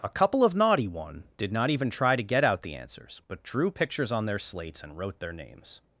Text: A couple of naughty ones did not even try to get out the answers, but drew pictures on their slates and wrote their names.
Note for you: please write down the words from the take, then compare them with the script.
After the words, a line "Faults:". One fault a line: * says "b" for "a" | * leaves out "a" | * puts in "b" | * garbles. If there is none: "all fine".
A couple of naughty one did not even try to get out the answers, but drew pictures on their slates and wrote their names.
Faults:
* says "one" for "ones"